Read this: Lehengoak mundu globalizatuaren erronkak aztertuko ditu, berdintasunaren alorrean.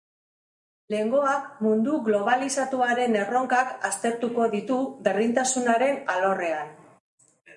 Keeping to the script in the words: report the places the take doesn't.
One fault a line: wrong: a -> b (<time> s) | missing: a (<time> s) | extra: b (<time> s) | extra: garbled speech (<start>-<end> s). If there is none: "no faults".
no faults